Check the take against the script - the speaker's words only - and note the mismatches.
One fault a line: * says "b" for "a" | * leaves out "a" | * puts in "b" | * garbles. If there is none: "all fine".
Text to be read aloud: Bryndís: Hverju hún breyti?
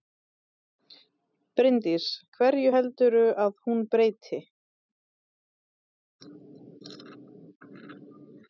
* puts in "heldurðu að"